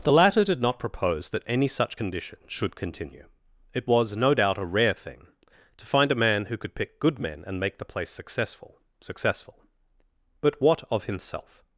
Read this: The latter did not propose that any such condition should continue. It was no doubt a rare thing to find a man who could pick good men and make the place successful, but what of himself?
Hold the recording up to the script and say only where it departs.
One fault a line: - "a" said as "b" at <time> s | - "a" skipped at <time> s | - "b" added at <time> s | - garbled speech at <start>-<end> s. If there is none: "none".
- "successful" added at 9.0 s